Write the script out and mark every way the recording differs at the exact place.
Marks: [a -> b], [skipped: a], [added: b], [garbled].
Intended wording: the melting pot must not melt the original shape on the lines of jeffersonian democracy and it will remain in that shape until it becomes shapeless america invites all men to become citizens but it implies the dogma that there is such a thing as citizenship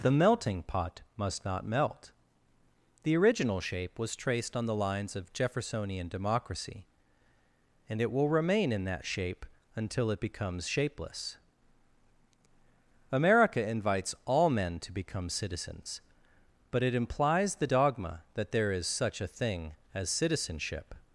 the melting pot must not melt the original shape [added: was traced] on the lines of jeffersonian democracy and it will remain in that shape until it becomes shapeless america invites all men to become citizens but it implies the dogma that there is such a thing as citizenship